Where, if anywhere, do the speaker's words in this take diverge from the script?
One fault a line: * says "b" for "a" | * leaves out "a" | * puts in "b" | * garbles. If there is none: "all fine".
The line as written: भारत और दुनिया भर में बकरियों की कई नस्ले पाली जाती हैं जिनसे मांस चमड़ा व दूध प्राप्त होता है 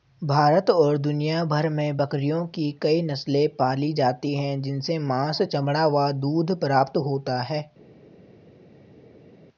all fine